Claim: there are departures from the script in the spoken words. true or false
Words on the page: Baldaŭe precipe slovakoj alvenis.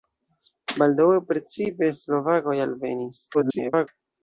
true